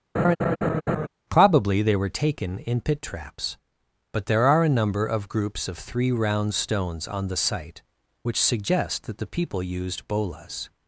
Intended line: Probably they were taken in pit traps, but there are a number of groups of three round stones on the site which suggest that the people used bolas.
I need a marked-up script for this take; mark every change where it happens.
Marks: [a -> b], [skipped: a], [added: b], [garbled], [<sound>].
[laugh] Probably they were taken in pit traps, but there are a number of groups of three round stones on the site which suggest that the people used bolas.